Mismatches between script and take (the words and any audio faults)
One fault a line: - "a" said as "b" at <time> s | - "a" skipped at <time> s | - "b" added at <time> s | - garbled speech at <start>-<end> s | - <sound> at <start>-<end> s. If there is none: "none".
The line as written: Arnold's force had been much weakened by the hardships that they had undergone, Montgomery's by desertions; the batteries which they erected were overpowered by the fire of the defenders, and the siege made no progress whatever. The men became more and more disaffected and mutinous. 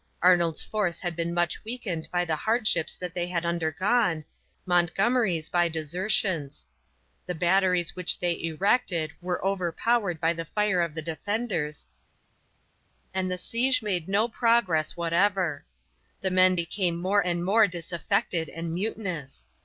none